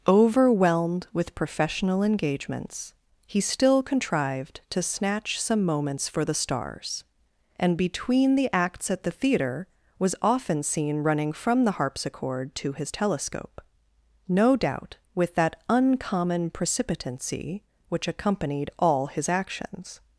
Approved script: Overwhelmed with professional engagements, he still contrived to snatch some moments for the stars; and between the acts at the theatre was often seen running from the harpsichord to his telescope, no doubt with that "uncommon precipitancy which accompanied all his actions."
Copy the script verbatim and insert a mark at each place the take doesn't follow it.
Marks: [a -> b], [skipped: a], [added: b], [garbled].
Overwhelmed with professional engagements, he still contrived to snatch some moments for the stars; and between the acts at the theatre was often seen running from the harpsichord to his telescope, no doubt with that "uncommon precipitancy which accompanied all his actions."